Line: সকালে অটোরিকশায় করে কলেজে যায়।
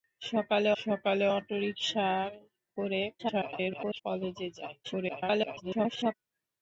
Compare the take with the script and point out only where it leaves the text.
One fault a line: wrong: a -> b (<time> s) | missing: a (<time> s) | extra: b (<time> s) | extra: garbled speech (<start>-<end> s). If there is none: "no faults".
extra: সকালে (0.7 s)
extra: garbled speech (3.2-4.0 s)
extra: garbled speech (4.8-6.1 s)